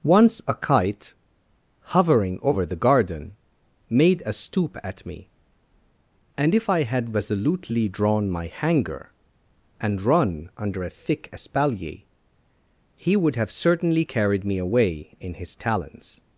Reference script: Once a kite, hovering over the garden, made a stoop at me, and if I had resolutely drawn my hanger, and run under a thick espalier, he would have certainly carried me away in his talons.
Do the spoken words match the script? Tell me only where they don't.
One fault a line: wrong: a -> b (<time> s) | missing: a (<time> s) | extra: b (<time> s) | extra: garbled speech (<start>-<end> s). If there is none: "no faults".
no faults